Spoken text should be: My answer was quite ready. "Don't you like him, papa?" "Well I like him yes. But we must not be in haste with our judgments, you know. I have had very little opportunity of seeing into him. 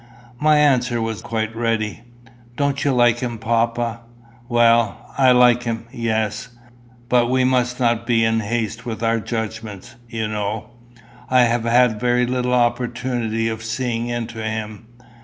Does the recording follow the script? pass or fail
pass